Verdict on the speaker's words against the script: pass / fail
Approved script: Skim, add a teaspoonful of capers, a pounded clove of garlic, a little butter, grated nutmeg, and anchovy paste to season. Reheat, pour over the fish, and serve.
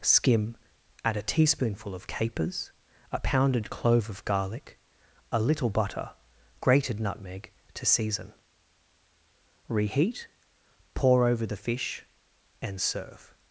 fail